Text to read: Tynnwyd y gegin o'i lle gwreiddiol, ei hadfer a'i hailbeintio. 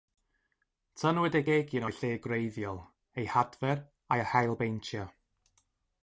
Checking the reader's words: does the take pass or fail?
pass